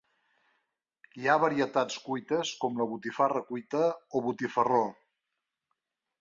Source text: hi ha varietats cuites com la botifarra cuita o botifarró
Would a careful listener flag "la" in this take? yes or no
no